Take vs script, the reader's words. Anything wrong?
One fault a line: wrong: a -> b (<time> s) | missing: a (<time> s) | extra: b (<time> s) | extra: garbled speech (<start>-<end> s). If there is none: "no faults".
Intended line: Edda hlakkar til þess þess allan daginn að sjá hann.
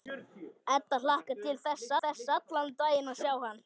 no faults